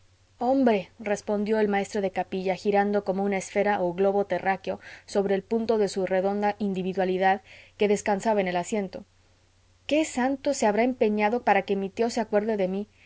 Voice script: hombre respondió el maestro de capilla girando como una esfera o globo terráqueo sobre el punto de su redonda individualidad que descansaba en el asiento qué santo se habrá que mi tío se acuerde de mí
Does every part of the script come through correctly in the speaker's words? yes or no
no